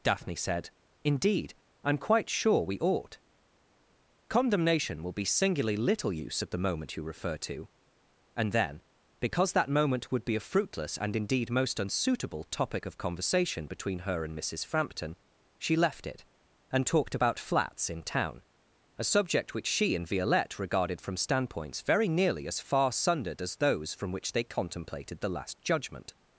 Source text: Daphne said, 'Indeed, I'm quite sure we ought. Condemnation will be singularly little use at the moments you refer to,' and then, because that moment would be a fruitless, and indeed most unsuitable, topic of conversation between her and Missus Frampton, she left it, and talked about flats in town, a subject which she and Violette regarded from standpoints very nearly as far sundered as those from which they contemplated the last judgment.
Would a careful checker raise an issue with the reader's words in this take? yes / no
yes